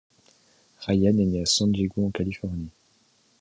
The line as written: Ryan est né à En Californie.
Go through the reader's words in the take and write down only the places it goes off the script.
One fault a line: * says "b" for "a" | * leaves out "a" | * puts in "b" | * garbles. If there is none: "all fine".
* puts in "San Diego"